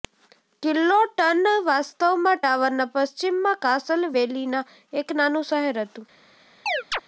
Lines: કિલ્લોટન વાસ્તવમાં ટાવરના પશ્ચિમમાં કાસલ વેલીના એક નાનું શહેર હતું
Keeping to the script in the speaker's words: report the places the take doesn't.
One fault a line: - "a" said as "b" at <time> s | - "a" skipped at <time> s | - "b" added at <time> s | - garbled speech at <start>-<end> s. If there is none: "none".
none